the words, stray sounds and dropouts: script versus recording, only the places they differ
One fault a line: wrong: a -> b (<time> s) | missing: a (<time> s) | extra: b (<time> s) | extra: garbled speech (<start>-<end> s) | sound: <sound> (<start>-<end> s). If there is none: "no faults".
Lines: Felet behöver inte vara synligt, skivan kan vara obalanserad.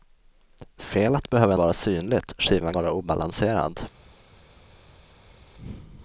missing: inte (1.6 s)
missing: kan (2.7 s)